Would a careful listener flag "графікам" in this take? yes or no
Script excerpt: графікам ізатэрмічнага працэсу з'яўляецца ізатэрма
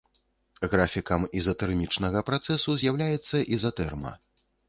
no